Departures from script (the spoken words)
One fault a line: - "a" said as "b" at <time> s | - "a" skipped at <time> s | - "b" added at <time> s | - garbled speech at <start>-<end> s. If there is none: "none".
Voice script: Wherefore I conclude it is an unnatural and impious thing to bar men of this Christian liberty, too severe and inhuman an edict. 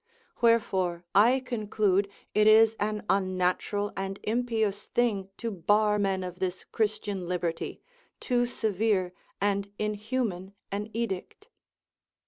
none